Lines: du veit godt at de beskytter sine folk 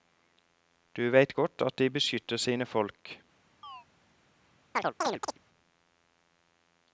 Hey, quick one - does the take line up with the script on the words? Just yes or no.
yes